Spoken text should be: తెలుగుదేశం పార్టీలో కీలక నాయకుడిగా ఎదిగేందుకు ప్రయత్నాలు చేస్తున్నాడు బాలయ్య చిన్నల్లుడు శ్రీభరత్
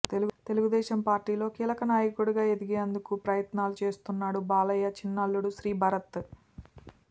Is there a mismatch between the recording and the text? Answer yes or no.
no